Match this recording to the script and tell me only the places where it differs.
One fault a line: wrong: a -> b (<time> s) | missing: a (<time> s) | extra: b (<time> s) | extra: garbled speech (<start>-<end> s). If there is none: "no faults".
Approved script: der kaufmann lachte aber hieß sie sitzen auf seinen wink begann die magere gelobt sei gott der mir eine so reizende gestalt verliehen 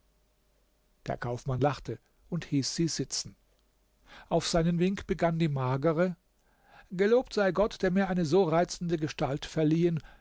wrong: aber -> und (2.3 s)